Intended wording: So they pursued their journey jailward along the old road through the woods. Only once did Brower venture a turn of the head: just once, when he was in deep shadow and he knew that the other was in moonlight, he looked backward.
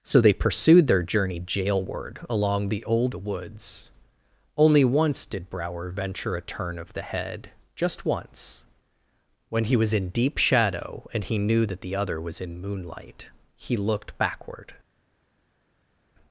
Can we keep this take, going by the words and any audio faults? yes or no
no